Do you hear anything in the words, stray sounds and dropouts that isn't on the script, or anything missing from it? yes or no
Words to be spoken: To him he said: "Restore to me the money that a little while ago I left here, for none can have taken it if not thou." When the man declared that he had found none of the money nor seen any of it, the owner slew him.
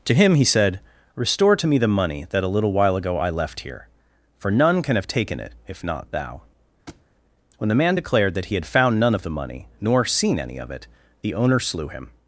yes